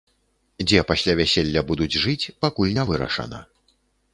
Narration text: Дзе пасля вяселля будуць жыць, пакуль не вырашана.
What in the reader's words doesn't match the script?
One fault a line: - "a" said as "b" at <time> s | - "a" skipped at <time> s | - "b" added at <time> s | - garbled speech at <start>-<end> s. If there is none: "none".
none